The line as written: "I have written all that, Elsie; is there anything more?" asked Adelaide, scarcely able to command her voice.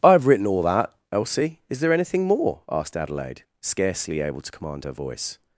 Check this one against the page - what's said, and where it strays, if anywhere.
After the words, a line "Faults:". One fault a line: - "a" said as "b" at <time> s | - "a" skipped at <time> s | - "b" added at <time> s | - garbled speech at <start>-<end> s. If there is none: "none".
"I have written all that, Elsie; is there anything more?" asked Adelaide, scarcely able to command her voice.
Faults:
none